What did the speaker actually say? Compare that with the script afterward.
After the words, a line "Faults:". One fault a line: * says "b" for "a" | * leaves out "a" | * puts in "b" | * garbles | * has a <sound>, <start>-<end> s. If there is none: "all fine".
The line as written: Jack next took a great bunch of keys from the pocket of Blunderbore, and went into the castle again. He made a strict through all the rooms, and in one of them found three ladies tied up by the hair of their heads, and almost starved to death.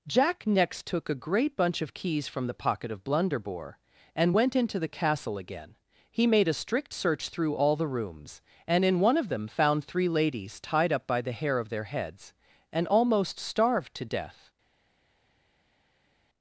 Jack next took a great bunch of keys from the pocket of Blunderbore, and went into the castle again. He made a strict search through all the rooms, and in one of them found three ladies tied up by the hair of their heads, and almost starved to death.
Faults:
* puts in "search"